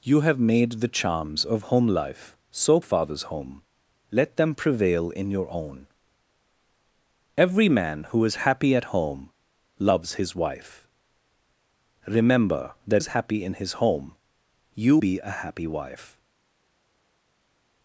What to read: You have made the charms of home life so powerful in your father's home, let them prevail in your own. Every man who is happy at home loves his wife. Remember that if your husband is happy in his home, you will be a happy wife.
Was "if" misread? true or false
true